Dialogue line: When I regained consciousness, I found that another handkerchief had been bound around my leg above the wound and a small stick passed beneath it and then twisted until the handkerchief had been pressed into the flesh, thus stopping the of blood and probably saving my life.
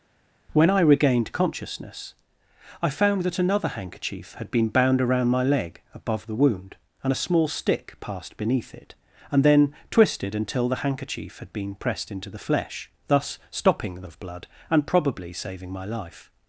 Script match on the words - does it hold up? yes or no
yes